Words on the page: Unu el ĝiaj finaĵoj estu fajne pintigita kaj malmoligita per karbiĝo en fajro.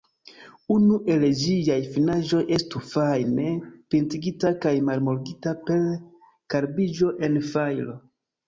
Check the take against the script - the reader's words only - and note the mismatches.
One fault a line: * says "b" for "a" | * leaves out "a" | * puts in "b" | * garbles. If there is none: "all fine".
all fine